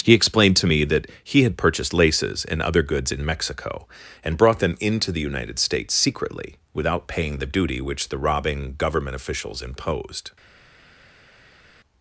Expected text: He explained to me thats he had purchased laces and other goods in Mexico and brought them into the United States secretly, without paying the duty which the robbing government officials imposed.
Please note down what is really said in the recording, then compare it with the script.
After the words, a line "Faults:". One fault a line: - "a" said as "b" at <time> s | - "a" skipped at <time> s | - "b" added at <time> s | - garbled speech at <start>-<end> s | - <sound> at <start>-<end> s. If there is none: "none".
He explained to me that he had purchased laces and other goods in Mexico and brought them into the United States secretly, without paying the duty which the robbing government officials imposed.
Faults:
- "thats" said as "that" at 0.8 s